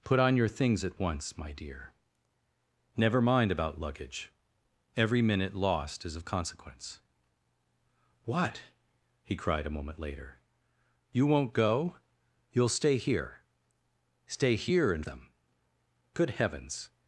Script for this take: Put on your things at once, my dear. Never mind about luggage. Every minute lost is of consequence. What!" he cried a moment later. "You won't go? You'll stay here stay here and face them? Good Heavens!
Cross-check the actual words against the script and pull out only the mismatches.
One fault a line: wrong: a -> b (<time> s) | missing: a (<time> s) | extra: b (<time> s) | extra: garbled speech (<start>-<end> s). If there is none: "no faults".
missing: face (15.1 s)